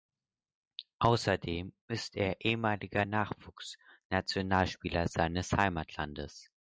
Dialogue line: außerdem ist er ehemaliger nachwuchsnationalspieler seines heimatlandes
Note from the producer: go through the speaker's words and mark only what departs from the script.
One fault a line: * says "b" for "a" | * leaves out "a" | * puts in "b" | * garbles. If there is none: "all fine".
all fine